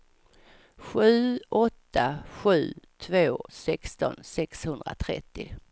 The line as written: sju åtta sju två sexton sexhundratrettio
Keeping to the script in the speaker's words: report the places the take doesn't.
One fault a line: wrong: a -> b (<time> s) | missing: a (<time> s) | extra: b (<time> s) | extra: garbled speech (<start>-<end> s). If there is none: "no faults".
no faults